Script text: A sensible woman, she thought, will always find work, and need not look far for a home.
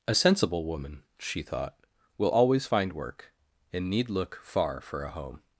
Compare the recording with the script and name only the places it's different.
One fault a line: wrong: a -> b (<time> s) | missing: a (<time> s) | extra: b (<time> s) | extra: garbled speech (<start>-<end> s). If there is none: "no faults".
missing: not (4.1 s)